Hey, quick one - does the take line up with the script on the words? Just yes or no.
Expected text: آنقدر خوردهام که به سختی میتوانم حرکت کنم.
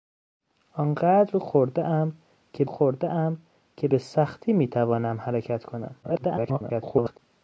no